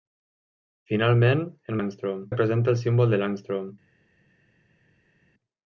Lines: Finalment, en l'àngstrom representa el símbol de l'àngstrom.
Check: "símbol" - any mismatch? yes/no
no